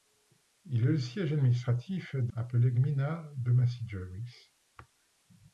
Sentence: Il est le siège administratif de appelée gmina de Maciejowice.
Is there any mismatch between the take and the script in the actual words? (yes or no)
no